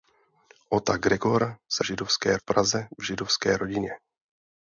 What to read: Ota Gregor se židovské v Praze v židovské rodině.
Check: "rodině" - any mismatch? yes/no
no